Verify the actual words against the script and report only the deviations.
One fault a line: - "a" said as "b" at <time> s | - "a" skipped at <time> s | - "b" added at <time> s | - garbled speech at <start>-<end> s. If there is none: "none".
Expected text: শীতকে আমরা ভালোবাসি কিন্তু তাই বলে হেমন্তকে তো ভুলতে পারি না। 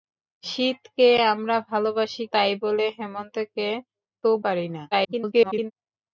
- "কিন্তু" skipped at 2.2 s
- "ভুলতে" skipped at 4.3 s
- garbled speech at 4.9-5.7 s